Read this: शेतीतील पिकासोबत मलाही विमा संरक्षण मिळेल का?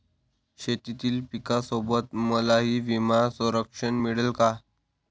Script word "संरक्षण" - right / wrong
right